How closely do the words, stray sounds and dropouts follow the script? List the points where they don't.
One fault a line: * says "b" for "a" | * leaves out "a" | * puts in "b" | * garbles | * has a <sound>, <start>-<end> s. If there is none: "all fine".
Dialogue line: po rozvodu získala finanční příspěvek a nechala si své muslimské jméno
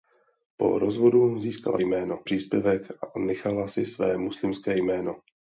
* says "jméno" for "finanční"